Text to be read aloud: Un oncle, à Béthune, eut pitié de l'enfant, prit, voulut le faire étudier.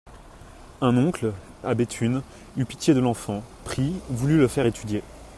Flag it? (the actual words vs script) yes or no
no